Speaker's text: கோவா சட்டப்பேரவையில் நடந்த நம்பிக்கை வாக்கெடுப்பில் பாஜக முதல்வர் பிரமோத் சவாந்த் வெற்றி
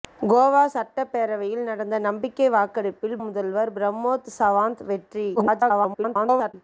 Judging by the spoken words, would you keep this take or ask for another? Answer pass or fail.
fail